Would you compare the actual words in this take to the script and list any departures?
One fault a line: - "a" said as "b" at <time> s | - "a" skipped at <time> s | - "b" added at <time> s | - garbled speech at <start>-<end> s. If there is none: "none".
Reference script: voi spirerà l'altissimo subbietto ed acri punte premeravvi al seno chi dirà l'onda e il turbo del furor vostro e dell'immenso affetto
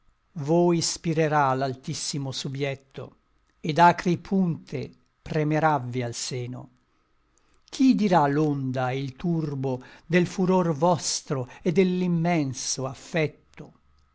none